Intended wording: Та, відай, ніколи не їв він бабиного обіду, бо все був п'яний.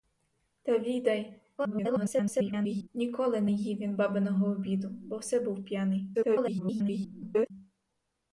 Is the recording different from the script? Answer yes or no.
yes